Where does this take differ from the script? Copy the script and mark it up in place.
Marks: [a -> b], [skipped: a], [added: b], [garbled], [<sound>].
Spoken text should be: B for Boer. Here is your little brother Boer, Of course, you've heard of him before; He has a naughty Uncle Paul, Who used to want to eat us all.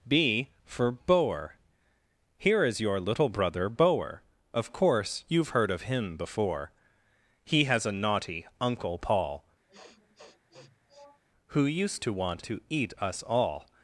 B for Boer. Here is your little brother Boer, Of course, you've heard of him before; He has a naughty Uncle Paul, [sniff] Who used to want to eat us all.